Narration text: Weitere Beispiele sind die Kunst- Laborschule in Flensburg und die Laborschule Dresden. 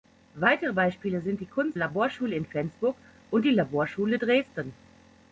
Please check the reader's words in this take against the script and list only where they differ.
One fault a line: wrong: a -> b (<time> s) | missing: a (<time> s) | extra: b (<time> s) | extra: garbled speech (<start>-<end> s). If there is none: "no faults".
no faults